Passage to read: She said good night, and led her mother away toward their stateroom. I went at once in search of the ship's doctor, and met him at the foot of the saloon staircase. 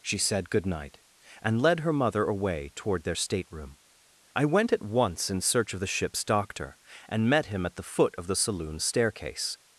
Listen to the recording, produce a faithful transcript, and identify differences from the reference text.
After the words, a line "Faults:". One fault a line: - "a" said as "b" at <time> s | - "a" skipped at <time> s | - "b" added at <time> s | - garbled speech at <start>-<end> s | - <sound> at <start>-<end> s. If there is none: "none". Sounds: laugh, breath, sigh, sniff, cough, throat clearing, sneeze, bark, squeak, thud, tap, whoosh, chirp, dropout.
She said good night, and led her mother away toward their stateroom. I went at once in search of the ship's doctor, and met him at the foot of the saloon staircase.
Faults:
none